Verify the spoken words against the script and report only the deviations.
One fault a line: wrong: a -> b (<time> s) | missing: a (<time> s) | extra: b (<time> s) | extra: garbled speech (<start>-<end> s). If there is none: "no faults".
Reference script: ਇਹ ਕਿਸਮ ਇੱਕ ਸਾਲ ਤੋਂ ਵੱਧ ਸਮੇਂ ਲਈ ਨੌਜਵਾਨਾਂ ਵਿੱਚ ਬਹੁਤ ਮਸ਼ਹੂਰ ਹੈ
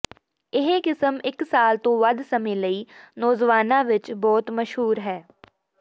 no faults